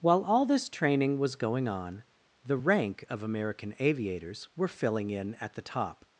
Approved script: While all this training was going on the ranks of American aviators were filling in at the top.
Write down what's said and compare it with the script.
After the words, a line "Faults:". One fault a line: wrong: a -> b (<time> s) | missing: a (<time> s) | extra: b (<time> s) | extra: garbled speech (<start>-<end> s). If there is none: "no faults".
While all this training was going on the rank of American aviators were filling in at the top.
Faults:
wrong: ranks -> rank (2.6 s)